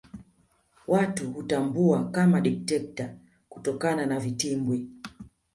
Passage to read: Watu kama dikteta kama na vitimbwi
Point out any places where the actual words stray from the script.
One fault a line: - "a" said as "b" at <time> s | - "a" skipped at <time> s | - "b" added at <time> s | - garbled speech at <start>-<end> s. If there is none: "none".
- "hutambua" added at 1.3 s
- "kama" said as "kutokana" at 3.5 s